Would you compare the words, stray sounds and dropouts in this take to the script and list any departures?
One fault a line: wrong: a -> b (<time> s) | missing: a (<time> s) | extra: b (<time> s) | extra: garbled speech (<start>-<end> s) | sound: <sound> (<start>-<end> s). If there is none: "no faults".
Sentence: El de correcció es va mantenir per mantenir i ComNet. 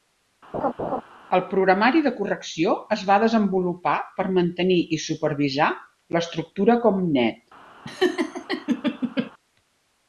sound: laugh (0.5-1.0 s)
extra: programari (1.5 s)
wrong: mantenir -> desenvolupar (3.2 s)
extra: supervisar l'estructura (5.1 s)
sound: laugh (7.8-9.3 s)